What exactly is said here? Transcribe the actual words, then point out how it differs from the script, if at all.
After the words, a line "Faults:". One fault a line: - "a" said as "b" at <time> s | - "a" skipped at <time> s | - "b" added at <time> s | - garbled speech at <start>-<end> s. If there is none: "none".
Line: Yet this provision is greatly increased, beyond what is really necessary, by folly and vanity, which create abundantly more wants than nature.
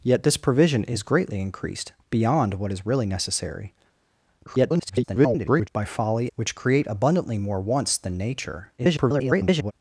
Yet this provision is greatly increased, beyond what is really necessary, [garbled] by folly which create abundantly more wants than nature. [garbled]
Faults:
- garbled speech at 4.5-5.7 s
- "and vanity" skipped at 6.3 s
- garbled speech at 8.8-9.7 s